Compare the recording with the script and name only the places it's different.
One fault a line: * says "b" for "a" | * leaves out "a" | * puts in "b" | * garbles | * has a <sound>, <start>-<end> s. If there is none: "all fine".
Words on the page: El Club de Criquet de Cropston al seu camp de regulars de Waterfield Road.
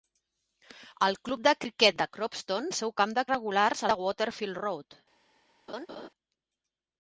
* has a laugh, 5.7-6.1 s